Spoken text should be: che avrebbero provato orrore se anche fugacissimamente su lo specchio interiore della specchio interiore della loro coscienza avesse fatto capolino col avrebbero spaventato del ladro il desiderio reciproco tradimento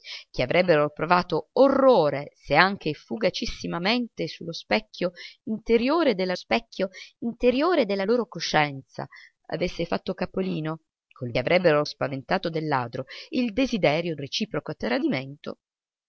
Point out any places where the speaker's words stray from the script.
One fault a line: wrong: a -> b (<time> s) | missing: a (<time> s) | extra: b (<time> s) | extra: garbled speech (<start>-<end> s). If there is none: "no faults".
no faults